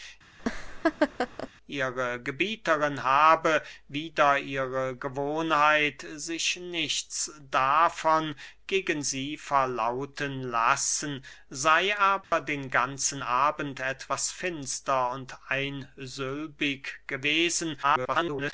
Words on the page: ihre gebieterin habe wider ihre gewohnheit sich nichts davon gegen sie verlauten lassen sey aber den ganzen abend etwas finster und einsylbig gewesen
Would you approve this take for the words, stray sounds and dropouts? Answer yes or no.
no